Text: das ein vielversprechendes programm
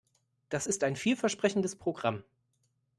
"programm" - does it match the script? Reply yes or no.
yes